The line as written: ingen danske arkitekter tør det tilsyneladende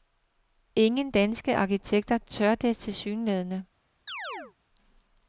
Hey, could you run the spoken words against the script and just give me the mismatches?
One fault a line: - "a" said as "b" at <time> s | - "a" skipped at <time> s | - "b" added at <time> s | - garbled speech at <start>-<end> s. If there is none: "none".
none